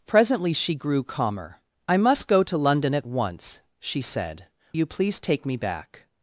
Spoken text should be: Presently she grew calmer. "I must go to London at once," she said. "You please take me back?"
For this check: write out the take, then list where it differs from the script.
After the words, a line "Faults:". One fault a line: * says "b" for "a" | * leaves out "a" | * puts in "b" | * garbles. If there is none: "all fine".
Presently she grew calmer. "I must go to London at once," she said. "You please take me back?"
Faults:
all fine